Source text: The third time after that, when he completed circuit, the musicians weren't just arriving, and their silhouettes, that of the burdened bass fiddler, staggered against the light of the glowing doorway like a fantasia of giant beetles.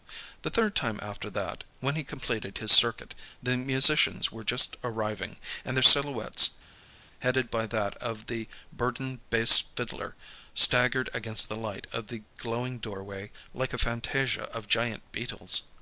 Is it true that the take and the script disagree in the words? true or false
true